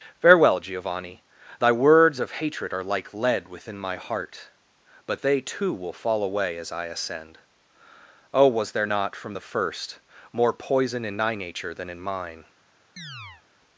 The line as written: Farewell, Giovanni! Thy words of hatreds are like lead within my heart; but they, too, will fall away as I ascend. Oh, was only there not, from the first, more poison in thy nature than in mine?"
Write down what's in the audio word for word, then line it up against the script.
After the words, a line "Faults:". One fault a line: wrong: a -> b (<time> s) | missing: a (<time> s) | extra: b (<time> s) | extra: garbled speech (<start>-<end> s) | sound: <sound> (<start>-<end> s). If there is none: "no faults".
Farewell, Giovanni! Thy words of hatred are like lead within my heart; but they, too, will fall away as I ascend. Oh, was there not, from the first, more poison in thy nature than in mine?"
Faults:
wrong: hatreds -> hatred (2.4 s)
missing: only (8.7 s)
sound: chirp (13.0-13.4 s)